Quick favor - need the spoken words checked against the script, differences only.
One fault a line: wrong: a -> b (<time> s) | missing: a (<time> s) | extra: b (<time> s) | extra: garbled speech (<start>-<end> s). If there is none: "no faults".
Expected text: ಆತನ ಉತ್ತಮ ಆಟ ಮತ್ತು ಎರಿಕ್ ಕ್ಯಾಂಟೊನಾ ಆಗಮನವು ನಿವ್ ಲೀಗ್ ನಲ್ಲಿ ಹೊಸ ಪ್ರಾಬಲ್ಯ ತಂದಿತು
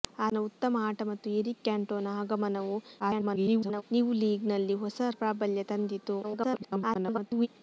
extra: garbled speech (3.0-3.8 s)
extra: garbled speech (6.2-7.5 s)